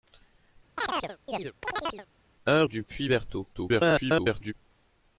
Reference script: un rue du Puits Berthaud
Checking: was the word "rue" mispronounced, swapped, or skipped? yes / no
yes